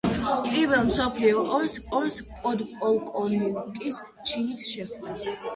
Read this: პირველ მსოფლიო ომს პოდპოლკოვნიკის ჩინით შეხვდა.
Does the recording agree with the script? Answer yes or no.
no